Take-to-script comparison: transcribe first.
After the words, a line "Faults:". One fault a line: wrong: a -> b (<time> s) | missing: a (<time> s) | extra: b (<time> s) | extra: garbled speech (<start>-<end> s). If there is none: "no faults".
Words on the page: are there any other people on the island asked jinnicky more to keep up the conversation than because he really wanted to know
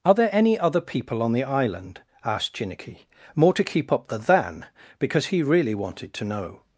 are there any other people on the island asked jinnicky more to keep up the than because he really wanted to know
Faults:
missing: conversation (4.2 s)